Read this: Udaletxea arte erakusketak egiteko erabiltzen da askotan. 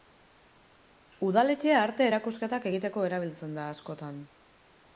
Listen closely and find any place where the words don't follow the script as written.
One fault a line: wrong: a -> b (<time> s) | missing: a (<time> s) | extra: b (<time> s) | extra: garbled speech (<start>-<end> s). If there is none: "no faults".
no faults